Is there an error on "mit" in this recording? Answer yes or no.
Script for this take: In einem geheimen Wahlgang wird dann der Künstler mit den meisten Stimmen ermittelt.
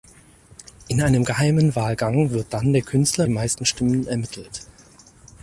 yes